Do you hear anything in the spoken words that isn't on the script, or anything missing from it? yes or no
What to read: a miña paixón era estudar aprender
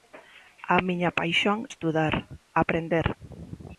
yes